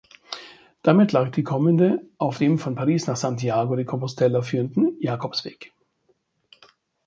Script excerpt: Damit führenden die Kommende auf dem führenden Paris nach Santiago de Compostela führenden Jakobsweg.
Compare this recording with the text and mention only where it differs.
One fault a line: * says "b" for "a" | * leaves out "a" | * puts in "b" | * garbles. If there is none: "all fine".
* says "lag" for "führenden"
* says "von" for "führenden"